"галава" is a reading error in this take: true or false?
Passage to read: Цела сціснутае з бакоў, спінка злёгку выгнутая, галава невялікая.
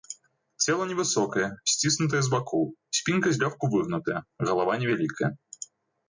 false